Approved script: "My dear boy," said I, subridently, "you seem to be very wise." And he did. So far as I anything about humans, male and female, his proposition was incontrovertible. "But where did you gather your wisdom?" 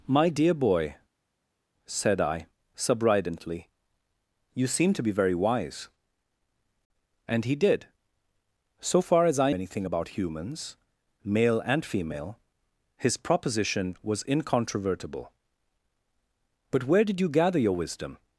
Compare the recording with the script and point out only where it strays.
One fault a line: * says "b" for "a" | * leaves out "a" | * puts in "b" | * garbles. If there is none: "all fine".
all fine